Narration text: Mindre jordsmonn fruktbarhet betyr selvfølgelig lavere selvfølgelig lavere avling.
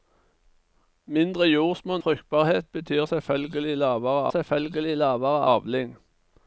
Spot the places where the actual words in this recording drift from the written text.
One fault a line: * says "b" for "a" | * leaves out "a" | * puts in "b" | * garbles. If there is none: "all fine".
all fine